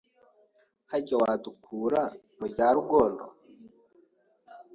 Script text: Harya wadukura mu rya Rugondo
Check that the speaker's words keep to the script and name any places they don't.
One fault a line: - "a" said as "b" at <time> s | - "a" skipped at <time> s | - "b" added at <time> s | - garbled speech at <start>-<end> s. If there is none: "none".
none